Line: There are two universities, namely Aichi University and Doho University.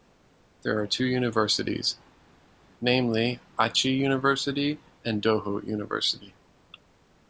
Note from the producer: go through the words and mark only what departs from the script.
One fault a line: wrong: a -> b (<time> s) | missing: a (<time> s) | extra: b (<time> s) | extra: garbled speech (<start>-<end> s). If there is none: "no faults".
no faults